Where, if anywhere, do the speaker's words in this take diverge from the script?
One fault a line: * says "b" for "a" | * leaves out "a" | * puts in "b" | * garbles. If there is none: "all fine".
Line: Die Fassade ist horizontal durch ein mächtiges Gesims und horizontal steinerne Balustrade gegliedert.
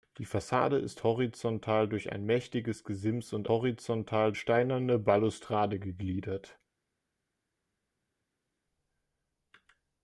all fine